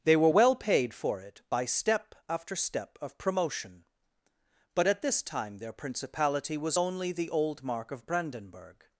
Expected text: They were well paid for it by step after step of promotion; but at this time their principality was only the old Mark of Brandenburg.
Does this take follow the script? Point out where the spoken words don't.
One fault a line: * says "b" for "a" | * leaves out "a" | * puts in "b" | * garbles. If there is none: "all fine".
all fine